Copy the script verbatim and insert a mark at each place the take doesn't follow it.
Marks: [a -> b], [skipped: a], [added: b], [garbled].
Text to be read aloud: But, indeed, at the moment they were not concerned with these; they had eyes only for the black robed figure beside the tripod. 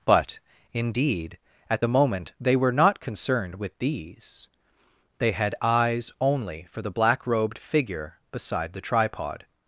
But, indeed, at the moment they were not concerned with these; they had eyes only for the black robed figure beside the tripod.